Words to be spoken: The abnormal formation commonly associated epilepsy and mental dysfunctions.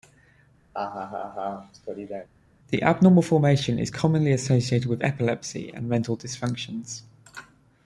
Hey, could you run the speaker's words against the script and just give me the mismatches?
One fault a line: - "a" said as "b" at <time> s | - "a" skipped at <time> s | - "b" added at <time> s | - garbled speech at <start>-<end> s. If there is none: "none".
- "is" added at 3.8 s
- "with" added at 4.9 s